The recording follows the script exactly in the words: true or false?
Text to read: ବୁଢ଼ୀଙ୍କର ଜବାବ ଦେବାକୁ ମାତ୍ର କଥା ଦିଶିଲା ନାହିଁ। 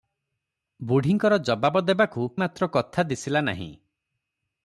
true